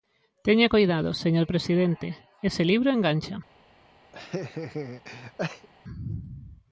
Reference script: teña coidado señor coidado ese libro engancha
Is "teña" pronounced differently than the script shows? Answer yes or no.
no